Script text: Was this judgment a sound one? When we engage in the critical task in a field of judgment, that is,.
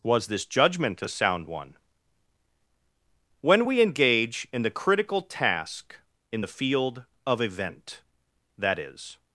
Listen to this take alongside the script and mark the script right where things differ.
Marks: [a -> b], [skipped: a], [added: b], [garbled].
Was this judgment a sound one? When we engage in the critical task in [a -> the] field of [judgment, -> event] that is,.